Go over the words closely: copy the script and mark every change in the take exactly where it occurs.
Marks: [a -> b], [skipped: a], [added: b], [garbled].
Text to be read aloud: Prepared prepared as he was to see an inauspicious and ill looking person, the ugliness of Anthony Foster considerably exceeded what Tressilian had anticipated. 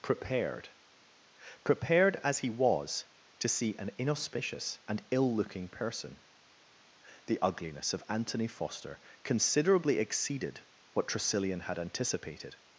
Prepared prepared as he was to see an inauspicious and ill looking person, the ugliness of Anthony Foster considerably exceeded what Tressilian had anticipated.